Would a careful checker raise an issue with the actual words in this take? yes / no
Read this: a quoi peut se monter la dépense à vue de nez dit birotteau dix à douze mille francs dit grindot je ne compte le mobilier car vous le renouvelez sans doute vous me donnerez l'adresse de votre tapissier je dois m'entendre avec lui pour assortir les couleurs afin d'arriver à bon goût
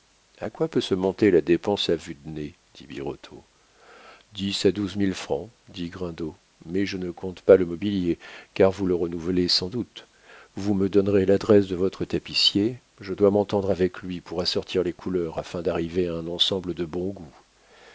yes